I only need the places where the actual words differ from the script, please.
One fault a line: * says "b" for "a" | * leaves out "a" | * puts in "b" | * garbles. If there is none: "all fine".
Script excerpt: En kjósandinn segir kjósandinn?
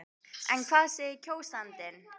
* says "hvað" for "kjósandinn"